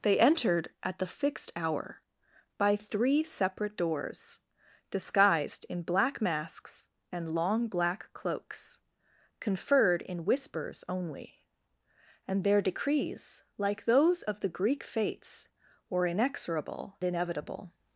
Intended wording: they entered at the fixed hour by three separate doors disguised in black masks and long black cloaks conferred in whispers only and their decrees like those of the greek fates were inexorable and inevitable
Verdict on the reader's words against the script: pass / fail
fail